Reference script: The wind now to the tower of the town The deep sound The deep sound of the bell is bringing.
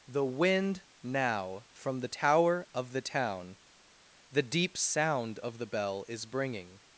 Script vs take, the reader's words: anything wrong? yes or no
yes